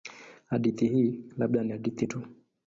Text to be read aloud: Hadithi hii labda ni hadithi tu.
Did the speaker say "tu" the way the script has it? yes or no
yes